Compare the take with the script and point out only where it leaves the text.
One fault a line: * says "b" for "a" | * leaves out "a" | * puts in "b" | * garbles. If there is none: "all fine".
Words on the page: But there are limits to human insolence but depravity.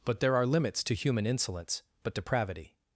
all fine